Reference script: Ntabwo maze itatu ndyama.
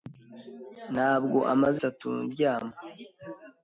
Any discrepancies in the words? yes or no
no